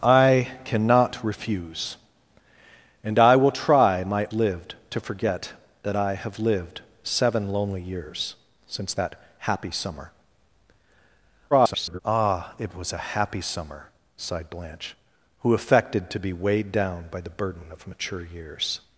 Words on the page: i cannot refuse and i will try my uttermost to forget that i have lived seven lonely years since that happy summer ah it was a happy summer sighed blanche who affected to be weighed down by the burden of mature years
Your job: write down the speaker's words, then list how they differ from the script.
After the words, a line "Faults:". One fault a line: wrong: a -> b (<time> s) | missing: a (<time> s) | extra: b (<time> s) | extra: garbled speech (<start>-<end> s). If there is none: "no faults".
i cannot refuse and i will try my lived to forget that i have lived seven lonely years since that happy summer [garbled] ah it was a happy summer sighed blanche who affected to be weighed down by the burden of mature years
Faults:
wrong: uttermost -> lived (4.3 s)
extra: garbled speech (11.5-12.0 s)